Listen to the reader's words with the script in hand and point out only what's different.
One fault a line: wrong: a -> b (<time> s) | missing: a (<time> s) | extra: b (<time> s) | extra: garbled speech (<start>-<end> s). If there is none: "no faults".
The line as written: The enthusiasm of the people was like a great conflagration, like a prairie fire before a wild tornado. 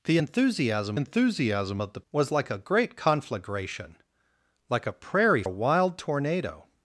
extra: enthusiasm (0.9 s)
missing: people (2.0 s)
missing: fire before (5.4 s)